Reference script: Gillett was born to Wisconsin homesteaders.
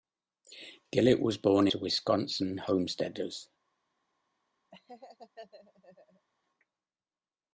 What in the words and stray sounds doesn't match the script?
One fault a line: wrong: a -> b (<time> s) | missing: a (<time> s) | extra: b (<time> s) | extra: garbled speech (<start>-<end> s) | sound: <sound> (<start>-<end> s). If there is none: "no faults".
sound: laugh (4.7-6.3 s)